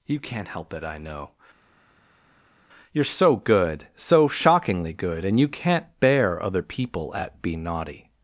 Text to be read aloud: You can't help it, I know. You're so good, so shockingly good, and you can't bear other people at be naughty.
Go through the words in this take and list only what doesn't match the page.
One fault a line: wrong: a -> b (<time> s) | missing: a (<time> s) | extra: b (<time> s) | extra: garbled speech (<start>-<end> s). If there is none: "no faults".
no faults